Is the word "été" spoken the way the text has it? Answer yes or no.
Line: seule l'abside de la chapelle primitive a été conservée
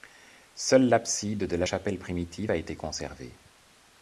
yes